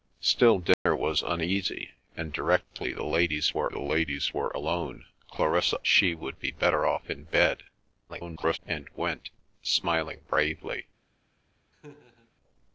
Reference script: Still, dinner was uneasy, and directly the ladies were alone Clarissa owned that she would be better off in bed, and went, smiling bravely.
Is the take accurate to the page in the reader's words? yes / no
no